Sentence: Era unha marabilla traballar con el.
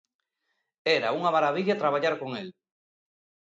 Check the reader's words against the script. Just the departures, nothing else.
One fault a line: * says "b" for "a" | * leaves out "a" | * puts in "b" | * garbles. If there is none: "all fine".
all fine